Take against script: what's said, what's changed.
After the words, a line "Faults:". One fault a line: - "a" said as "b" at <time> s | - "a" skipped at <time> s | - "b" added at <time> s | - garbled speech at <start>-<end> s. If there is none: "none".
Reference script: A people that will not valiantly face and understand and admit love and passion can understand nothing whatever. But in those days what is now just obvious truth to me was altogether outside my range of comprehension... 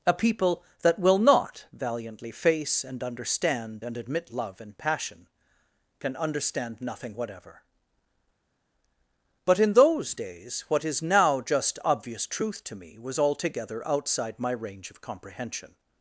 A people that will not valiantly face and understand and admit love and passion can understand nothing whatever. But in those days what is now just obvious truth to me was altogether outside my range of comprehension...
Faults:
none